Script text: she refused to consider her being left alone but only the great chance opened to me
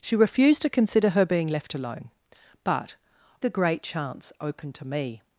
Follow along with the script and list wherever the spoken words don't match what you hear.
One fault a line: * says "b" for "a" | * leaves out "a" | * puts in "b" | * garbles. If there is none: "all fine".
* leaves out "only"